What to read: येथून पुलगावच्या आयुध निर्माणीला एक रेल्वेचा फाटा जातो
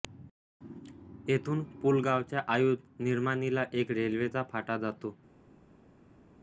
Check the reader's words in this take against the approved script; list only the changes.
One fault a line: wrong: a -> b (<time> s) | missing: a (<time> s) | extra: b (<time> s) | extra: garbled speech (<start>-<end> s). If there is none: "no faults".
no faults